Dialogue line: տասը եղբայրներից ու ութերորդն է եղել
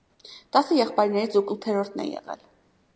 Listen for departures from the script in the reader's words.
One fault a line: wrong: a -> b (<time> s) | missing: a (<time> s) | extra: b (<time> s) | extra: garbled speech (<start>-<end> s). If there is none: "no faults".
no faults